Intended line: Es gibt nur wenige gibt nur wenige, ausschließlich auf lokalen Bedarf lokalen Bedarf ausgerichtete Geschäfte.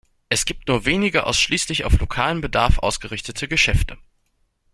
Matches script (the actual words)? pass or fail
fail